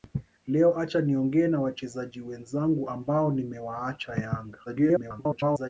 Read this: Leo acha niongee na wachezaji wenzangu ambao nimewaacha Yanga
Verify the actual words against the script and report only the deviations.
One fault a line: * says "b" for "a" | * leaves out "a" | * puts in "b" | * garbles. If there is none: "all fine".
* garbles